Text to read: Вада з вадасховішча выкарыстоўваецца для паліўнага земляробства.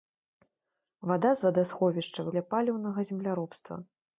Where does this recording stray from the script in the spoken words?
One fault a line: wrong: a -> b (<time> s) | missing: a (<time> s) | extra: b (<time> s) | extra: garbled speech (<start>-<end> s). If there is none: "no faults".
missing: выкарыстоўваецца (2.3 s)